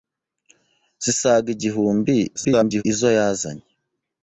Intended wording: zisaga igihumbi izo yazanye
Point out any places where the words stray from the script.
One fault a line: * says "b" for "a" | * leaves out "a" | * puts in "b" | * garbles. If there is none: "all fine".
* garbles